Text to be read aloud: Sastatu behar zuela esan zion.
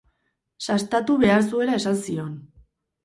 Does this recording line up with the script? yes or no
yes